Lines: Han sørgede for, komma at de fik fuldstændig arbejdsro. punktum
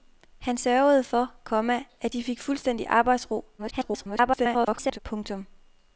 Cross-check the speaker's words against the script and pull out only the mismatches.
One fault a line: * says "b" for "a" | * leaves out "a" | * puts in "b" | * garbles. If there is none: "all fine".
* garbles